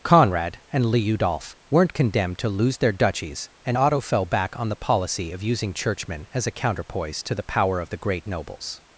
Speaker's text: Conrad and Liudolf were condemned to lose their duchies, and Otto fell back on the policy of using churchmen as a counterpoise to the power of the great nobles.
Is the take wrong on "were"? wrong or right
wrong